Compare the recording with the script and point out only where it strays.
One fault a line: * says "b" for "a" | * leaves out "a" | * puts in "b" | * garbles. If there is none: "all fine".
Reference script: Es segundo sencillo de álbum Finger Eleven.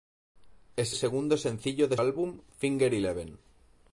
all fine